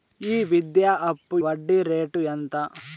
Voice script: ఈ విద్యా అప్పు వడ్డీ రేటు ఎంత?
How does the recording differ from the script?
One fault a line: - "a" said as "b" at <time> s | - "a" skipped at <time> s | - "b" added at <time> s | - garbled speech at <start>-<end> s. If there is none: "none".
none